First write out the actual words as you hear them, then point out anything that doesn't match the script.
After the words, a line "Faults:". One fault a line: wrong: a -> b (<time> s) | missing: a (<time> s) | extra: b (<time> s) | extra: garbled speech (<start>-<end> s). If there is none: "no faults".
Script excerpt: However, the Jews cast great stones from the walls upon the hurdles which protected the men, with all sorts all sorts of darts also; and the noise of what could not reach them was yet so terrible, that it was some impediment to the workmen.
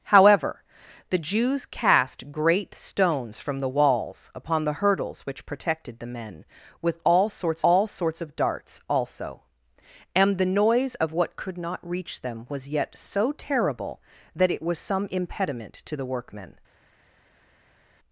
However, the Jews cast great stones from the walls upon the hurdles which protected the men, with all sorts all sorts of darts also; and the noise of what could not reach them was yet so terrible, that it was some impediment to the workmen.
Faults:
no faults